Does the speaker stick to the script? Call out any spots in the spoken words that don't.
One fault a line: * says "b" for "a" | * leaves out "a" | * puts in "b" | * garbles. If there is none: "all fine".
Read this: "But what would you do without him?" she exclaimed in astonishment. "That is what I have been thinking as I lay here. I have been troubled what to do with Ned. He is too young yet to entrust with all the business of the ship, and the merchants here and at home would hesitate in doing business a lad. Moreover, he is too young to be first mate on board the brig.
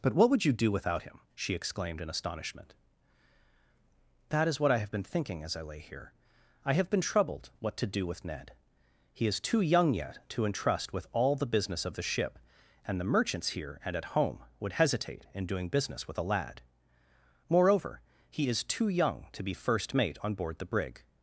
* puts in "with"